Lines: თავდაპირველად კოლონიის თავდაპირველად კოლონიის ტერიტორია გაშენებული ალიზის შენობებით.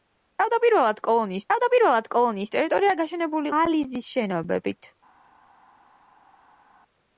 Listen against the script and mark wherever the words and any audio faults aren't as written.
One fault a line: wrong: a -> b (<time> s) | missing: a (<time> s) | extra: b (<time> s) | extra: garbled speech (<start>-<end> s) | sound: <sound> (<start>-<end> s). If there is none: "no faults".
no faults